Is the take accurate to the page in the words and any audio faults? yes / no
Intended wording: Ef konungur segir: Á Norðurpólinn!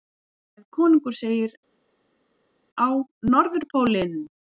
yes